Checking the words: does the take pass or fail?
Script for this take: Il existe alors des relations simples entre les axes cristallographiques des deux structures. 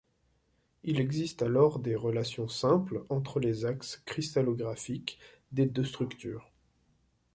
pass